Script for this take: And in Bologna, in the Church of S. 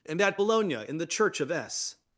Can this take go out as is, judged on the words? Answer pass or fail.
fail